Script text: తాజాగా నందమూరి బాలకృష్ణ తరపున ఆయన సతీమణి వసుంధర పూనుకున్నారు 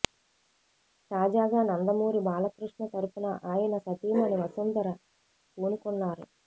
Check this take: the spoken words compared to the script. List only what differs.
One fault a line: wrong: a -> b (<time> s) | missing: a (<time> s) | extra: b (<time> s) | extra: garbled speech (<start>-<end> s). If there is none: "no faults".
no faults